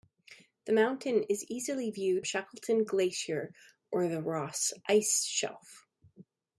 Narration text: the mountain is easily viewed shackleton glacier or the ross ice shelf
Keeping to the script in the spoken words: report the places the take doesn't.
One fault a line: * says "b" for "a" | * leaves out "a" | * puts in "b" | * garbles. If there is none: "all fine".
all fine